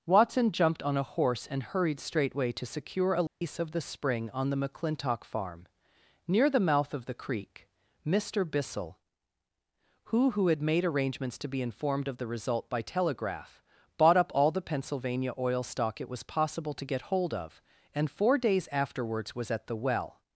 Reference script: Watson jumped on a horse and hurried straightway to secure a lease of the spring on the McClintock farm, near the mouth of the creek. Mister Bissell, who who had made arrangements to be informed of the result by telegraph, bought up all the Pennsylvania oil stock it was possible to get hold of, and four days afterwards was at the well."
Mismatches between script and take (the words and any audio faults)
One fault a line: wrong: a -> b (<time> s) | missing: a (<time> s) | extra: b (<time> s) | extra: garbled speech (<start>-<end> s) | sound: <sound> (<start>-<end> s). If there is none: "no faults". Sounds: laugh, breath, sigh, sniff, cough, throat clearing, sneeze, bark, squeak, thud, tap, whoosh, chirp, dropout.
sound: dropout (3.3-3.4 s)